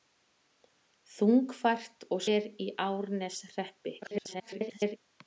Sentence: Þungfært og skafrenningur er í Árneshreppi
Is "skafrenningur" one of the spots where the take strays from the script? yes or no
yes